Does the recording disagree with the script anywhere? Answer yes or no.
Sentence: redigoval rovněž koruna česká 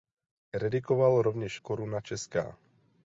no